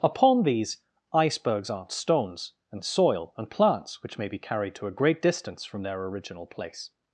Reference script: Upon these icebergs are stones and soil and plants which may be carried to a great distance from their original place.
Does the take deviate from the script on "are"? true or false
true